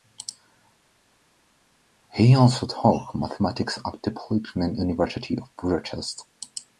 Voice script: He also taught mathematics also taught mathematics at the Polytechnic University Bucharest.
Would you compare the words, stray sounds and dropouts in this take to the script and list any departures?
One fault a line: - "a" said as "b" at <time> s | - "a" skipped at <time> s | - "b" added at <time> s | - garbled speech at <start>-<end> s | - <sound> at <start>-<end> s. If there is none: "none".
- "also taught mathematics" skipped at 3.8 s
- "of" added at 5.4 s